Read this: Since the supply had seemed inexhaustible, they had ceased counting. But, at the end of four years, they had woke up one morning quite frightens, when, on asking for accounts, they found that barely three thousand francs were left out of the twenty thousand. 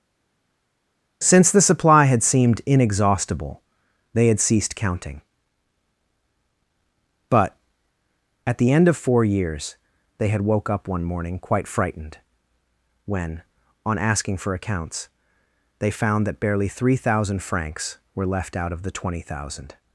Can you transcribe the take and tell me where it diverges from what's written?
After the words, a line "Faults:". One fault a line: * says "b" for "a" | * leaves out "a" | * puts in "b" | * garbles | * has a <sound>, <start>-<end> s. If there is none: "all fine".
Since the supply had seemed inexhaustible, they had ceased counting. But, at the end of four years, they had woke up one morning quite frightened, when, on asking for accounts, they found that barely three thousand francs were left out of the twenty thousand.
Faults:
* says "frightened" for "frightens"